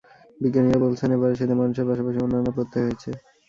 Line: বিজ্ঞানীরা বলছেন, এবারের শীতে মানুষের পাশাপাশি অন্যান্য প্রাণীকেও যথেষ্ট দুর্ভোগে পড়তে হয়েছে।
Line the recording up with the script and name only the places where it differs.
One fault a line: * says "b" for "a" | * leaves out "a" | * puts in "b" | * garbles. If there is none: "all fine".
* leaves out "প্রাণীকেও যথেষ্ট দুর্ভোগে"